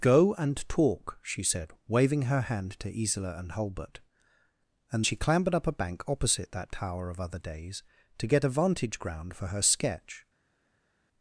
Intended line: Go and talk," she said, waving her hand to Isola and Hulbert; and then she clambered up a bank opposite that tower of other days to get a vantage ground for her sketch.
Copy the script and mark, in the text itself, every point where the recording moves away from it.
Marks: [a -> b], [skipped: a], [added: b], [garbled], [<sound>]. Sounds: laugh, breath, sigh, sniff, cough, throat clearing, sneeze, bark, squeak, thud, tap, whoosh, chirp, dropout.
Go and talk," she said, waving her hand to Isola and Hulbert; and [skipped: then] she clambered up a bank opposite that tower of other days to get a vantage ground for her sketch.